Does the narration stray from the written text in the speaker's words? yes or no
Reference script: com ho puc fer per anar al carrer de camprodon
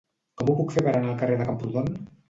no